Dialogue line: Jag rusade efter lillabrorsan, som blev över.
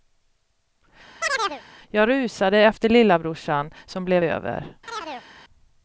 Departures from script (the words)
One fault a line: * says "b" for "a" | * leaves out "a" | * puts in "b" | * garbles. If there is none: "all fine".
all fine